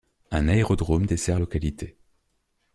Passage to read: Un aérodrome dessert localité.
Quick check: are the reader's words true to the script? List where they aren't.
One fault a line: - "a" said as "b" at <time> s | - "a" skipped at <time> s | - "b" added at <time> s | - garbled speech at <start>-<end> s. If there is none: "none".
none